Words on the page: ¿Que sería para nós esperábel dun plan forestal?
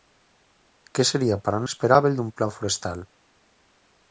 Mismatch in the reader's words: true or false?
true